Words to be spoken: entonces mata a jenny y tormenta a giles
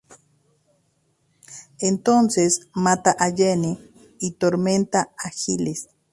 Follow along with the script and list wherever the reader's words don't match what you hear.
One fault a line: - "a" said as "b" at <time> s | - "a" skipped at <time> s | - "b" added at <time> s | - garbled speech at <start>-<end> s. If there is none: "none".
none